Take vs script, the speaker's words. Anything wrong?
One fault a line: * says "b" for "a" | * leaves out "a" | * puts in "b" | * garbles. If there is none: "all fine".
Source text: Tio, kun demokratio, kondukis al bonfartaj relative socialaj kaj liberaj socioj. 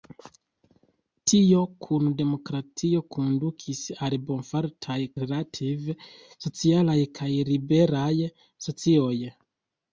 all fine